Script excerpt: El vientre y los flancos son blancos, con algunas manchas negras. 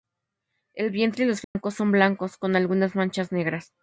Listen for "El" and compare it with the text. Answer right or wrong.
right